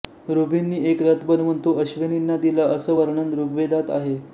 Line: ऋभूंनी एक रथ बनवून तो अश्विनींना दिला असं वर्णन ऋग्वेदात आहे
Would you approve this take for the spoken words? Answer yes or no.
yes